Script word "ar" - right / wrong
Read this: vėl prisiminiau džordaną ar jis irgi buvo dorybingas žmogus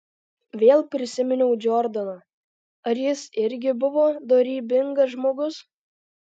right